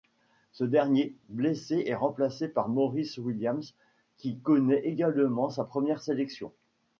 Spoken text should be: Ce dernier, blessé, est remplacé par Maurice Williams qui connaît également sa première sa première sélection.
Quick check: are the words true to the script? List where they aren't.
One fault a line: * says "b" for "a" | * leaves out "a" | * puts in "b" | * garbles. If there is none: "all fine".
* leaves out "sa première"